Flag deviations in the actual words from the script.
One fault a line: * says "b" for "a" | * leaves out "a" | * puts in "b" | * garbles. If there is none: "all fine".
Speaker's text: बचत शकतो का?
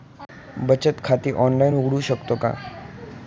* puts in "खाते ऑनलाइन उघडू"